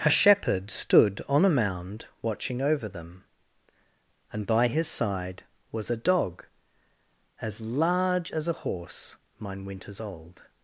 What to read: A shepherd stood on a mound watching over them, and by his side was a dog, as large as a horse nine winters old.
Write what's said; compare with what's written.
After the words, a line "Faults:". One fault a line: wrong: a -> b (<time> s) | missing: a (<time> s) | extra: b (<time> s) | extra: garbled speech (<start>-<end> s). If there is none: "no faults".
A shepherd stood on a mound watching over them, and by his side was a dog, as large as a horse mine winters old.
Faults:
wrong: nine -> mine (9.4 s)